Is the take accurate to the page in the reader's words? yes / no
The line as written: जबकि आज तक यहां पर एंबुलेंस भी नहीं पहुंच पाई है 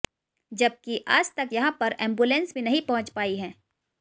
yes